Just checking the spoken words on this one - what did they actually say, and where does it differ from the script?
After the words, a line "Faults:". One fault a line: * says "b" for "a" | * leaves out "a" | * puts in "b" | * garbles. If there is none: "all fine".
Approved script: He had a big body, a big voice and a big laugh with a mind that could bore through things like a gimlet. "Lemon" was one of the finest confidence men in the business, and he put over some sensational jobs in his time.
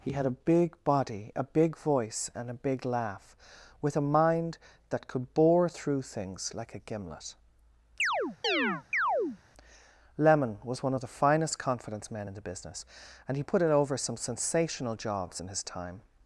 He had a big body, a big voice and a big laugh with a mind that could bore through things like a gimlet. "Lemon" was one of the finest confidence men in the business, and he put it over some sensational jobs in his time.
Faults:
* puts in "it"